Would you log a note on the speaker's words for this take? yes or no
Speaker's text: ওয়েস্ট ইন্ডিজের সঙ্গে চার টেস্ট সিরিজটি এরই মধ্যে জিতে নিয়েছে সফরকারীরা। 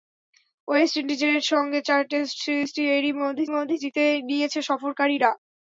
yes